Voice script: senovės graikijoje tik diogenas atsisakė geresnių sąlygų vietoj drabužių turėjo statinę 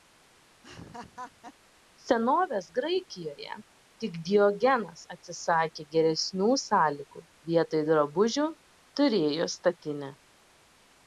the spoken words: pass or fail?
pass